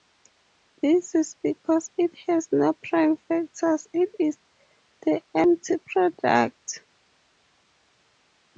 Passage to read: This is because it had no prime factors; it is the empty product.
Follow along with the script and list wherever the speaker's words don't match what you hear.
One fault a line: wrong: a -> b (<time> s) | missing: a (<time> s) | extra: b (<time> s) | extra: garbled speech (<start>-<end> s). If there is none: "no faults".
wrong: had -> has (2.3 s)